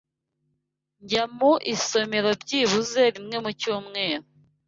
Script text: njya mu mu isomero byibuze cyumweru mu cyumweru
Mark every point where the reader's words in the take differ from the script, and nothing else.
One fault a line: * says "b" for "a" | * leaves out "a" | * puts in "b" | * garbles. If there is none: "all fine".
* leaves out "mu"
* says "rimwe" for "cyumweru"